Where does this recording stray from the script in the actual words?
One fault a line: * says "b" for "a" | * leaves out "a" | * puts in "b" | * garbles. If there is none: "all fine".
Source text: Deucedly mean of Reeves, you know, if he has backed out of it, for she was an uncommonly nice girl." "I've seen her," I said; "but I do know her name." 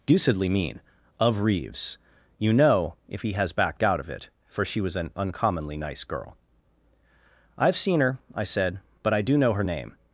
all fine